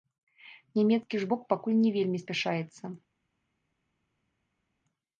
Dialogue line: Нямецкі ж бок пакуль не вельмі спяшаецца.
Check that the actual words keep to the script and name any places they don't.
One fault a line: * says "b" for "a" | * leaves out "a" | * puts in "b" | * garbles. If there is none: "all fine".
all fine